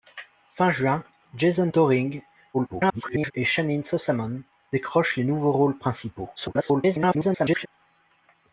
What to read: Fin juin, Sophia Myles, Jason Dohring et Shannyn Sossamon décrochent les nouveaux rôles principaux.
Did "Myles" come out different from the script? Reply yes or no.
yes